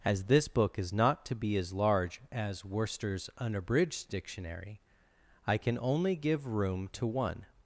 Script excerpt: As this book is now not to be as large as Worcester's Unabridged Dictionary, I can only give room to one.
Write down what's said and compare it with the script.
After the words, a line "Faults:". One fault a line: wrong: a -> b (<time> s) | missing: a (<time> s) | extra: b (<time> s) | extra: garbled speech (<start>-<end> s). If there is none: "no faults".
As this book is not to be as large as Worcester's Unabridged Dictionary, I can only give room to one.
Faults:
missing: now (0.9 s)